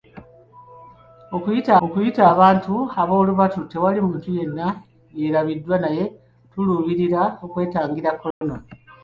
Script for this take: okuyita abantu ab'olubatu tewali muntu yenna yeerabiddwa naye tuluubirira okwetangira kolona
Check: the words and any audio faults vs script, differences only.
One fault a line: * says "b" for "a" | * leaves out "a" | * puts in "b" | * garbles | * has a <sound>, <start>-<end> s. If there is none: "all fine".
* puts in "okuyita"
* has a dropout, 8.3-8.4 s